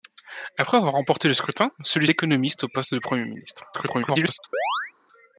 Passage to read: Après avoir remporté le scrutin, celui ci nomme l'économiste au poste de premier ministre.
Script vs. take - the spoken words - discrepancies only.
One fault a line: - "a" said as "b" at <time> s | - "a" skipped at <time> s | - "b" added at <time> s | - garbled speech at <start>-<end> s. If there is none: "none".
- "ci nomme" skipped at 2.1 s
- garbled speech at 3.7-4.4 s